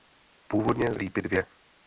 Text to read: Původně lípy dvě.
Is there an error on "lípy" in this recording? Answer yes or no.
no